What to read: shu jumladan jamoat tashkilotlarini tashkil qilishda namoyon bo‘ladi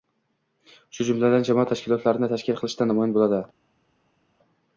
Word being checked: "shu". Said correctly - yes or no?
yes